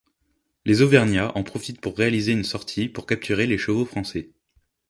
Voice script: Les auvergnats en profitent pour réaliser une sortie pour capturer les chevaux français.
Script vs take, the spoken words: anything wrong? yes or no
no